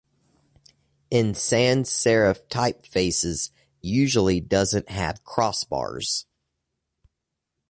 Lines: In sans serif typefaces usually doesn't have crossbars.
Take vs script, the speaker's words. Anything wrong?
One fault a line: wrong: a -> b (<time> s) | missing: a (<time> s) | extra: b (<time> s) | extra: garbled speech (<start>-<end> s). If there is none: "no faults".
no faults